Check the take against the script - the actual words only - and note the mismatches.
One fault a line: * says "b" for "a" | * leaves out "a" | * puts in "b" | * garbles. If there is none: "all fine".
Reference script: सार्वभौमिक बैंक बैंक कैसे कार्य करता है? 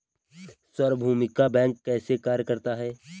* leaves out "बैंक"